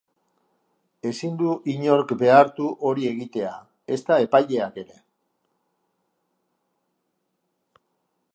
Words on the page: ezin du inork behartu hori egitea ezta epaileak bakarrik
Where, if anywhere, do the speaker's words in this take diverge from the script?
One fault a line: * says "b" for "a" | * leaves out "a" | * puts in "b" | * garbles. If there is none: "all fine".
* says "ere" for "bakarrik"